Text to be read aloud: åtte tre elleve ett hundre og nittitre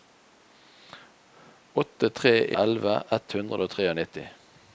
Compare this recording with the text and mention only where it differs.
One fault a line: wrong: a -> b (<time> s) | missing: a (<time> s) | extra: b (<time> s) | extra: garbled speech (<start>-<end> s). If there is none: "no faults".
no faults